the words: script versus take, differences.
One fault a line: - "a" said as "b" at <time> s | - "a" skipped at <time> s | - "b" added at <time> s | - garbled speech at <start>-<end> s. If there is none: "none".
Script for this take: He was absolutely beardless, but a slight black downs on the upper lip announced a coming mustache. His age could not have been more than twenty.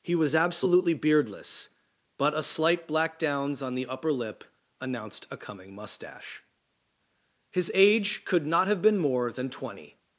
none